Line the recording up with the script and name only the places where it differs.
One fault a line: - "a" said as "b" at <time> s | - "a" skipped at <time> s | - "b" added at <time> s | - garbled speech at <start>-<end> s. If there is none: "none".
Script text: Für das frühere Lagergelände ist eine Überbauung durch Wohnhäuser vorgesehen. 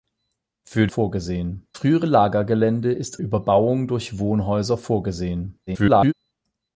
- "das" said as "vorgesehen" at 0.9 s
- "eine" skipped at 3.2 s
- garbled speech at 5.7-6.1 s